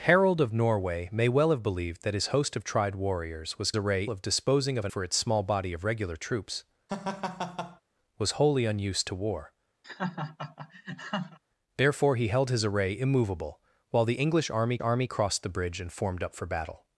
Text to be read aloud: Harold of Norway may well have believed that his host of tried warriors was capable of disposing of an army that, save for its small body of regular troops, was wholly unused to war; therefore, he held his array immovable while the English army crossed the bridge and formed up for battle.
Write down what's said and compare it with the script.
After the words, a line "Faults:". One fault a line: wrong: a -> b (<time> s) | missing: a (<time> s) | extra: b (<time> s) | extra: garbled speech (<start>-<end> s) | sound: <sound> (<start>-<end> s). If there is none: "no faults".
Harold of Norway may well have believed that his host of tried warriors was array of disposing of an for its small body of regular troops, was wholly unused to war; therefore, he held his array immovable while the English army army crossed the bridge and formed up for battle.
Faults:
wrong: capable -> array (3.7 s)
missing: army that save (4.9 s)
sound: laugh (6.9-7.8 s)
sound: laugh (9.8-11.4 s)
extra: army (14.8 s)